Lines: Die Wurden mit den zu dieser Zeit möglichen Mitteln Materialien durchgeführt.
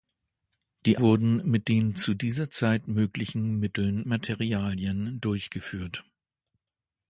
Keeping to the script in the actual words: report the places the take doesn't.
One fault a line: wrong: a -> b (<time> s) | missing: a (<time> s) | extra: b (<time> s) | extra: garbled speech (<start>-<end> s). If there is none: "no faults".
no faults